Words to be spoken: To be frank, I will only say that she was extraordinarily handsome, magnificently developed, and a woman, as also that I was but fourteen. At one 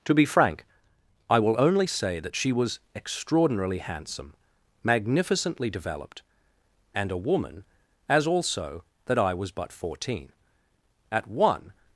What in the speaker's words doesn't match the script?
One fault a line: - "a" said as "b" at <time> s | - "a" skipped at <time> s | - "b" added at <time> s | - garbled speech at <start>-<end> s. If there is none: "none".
none